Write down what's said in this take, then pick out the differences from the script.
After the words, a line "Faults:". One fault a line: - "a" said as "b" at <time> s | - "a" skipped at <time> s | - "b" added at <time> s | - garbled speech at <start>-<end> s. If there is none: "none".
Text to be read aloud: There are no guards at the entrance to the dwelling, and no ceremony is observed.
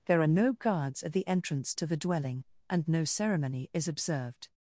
There are no guards at the entrance to the dwelling, and no ceremony is observed.
Faults:
none